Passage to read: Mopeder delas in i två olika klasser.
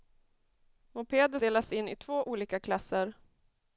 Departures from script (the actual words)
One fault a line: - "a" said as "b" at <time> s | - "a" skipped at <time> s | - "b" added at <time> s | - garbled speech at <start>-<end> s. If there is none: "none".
none